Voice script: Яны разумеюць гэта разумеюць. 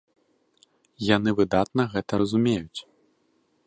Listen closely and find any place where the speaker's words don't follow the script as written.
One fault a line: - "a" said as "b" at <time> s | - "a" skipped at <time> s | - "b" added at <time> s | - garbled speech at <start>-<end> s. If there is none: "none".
- "разумеюць" said as "выдатна" at 1.4 s